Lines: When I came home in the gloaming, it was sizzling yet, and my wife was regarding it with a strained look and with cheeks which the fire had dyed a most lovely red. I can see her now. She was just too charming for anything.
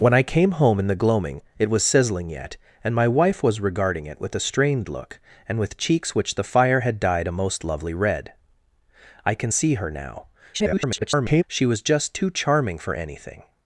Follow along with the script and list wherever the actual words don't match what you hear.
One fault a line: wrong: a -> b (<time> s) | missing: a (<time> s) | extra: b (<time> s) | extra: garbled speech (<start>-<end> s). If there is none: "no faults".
extra: garbled speech (10.5-11.4 s)